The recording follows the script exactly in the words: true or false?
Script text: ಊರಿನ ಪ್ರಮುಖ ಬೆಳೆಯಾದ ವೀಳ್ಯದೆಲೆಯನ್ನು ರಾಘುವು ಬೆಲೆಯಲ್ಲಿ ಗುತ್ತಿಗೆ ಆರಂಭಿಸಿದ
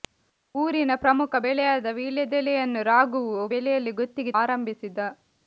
true